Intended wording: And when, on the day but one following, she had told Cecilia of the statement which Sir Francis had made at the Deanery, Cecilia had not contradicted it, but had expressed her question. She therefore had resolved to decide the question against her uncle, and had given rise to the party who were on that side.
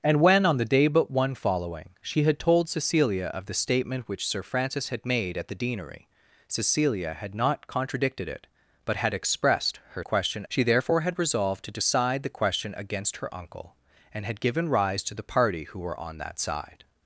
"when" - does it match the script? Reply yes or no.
yes